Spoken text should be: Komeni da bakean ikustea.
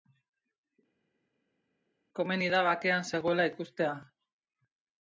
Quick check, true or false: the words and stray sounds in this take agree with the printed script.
false